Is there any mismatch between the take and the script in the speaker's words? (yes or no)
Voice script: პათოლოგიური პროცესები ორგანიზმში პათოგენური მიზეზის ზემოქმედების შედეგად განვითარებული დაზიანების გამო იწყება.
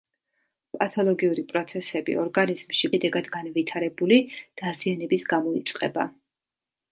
yes